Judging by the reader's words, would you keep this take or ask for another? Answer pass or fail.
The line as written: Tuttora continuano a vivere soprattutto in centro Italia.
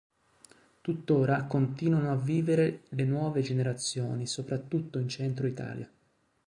fail